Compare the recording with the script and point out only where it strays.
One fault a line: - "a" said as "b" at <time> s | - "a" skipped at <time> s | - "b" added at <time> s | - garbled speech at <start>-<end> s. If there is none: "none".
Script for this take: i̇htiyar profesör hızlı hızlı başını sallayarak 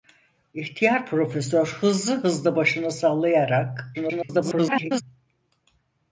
- garbled speech at 3.9-5.0 s